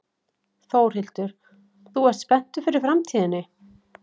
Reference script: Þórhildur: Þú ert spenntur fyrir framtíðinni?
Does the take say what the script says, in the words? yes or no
yes